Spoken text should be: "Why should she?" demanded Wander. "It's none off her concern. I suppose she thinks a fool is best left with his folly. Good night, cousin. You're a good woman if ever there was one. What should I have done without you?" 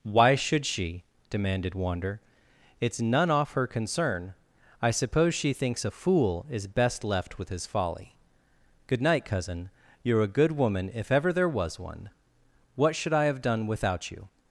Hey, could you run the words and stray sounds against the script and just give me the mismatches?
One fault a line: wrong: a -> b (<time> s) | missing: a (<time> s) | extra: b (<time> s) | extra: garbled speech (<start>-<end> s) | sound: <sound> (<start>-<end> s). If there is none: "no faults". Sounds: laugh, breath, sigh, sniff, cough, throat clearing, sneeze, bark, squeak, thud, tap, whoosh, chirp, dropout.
no faults